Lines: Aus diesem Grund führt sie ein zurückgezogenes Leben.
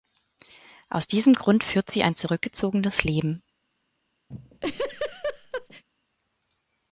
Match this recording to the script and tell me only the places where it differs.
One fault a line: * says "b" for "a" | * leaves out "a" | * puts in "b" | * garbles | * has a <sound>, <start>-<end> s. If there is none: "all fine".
* has a laugh, 4.3-5.8 s